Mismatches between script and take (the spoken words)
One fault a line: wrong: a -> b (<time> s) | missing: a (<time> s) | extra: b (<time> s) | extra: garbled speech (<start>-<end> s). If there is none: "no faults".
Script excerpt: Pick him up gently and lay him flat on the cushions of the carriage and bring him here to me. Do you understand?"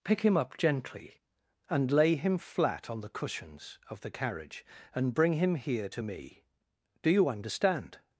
no faults